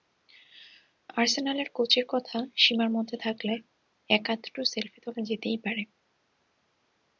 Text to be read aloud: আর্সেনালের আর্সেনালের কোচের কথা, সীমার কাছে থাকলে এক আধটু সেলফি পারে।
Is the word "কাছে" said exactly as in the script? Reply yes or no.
no